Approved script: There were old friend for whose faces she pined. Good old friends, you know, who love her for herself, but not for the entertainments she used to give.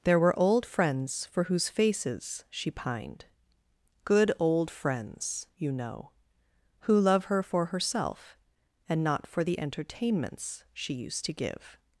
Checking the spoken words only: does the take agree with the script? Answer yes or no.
no